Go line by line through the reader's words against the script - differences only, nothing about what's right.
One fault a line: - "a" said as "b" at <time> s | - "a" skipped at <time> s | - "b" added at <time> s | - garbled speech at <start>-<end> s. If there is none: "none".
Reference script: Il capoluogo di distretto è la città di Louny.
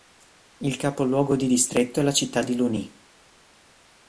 none